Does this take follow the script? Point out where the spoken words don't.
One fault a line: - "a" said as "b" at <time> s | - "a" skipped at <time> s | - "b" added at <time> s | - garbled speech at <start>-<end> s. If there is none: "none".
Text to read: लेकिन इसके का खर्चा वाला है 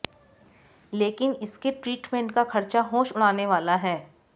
- "ट्रीटमेंट" added at 1.7 s
- "होश उड़ाने" added at 2.9 s